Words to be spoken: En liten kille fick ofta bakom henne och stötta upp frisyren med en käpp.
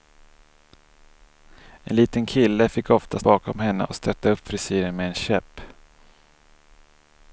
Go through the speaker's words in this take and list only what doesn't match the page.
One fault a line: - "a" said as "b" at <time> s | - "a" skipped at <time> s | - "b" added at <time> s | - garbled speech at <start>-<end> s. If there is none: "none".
none